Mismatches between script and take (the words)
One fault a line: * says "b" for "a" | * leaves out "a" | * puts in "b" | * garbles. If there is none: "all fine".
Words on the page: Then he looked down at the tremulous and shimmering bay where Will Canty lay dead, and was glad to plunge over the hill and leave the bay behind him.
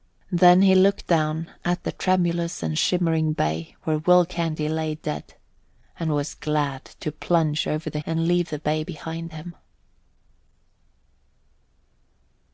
* leaves out "hill"